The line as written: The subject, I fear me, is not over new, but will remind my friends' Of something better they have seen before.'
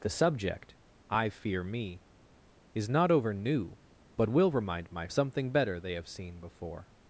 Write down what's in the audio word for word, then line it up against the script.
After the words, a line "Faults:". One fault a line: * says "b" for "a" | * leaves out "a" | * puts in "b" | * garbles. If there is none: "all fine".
The subject, I fear me, is not over new, but will remind my something better they have seen before.'
Faults:
* leaves out "friends Of"